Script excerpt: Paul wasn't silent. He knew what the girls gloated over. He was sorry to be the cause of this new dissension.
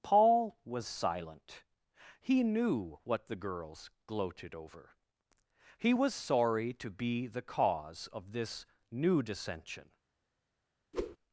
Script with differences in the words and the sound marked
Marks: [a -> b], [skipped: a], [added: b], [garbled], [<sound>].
Paul [wasn't -> was] silent. He knew what the girls gloated over. He was sorry to be the cause of this new dissension. [whoosh]